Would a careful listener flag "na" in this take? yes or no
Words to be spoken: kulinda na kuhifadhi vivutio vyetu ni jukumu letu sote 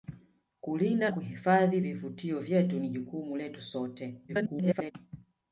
yes